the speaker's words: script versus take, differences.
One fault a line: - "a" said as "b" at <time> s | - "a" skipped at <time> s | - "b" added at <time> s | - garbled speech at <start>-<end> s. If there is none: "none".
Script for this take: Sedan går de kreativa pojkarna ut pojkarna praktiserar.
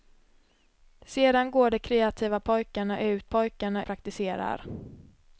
none